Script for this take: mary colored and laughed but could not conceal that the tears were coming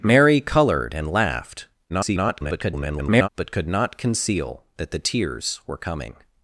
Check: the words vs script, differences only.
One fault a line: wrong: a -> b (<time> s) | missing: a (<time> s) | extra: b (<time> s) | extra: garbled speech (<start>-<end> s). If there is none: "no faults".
extra: garbled speech (1.9-3.3 s)